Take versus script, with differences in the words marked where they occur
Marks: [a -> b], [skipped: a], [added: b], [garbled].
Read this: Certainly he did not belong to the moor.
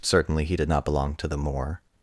Certainly he did not belong to the moor.